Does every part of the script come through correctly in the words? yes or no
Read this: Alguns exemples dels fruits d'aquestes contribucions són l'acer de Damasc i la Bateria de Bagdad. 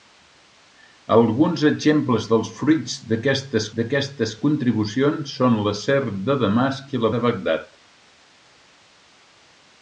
no